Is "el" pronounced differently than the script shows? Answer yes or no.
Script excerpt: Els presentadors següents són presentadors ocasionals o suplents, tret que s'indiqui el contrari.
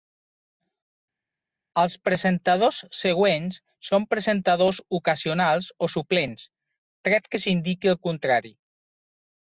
no